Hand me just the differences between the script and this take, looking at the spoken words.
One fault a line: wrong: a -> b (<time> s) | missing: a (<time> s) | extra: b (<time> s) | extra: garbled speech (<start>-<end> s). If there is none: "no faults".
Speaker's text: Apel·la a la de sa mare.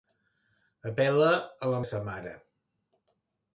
no faults